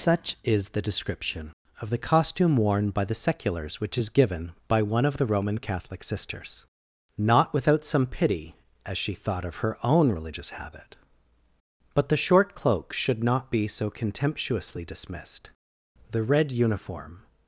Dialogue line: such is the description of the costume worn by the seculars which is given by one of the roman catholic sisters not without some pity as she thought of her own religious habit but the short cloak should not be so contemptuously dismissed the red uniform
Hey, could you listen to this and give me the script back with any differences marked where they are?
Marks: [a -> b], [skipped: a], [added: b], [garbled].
such is the description of the costume worn by the seculars which is given by one of the roman catholic sisters not without some pity as she thought of her own religious habit but the short cloak should not be so contemptuously dismissed the red uniform